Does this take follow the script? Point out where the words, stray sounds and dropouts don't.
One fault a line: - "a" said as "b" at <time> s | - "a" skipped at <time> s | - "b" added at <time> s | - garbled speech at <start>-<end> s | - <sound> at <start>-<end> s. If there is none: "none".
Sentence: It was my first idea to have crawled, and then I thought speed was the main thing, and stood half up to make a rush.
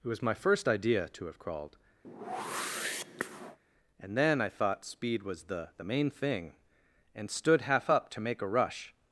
- whoosh at 2.0-3.6 s
- "the" added at 5.8 s